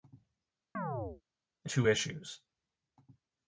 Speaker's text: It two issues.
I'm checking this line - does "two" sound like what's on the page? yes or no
yes